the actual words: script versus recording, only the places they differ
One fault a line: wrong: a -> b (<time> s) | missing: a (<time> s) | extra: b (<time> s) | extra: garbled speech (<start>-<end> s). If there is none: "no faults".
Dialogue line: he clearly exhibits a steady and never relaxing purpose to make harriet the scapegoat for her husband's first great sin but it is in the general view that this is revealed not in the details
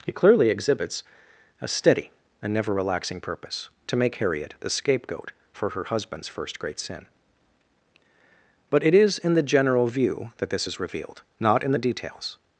no faults